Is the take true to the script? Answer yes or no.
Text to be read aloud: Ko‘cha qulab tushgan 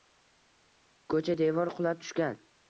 no